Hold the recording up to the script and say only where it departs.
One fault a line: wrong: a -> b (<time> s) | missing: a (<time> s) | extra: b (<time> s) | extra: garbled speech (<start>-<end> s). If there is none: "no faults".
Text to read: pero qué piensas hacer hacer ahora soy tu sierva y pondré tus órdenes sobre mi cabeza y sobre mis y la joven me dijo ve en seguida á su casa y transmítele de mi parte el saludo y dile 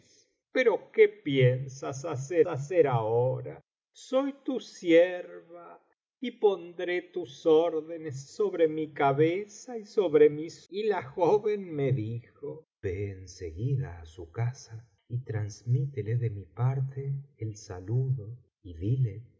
no faults